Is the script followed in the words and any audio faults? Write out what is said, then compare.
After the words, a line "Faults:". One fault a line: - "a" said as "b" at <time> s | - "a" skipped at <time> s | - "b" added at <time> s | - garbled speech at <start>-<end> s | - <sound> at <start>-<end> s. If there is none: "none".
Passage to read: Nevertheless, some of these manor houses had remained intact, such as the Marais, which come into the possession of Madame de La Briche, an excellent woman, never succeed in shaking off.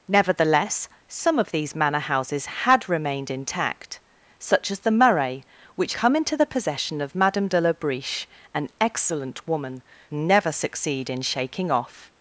Nevertheless, some of these manor houses had remained intact, such as the Marais, which come into the possession of Madame de La Briche, an excellent woman, never succeed in shaking off.
Faults:
none